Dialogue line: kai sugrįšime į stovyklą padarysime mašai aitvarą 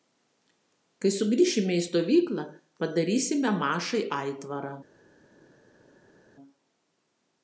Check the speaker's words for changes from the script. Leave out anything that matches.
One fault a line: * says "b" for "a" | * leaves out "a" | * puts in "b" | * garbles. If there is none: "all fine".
all fine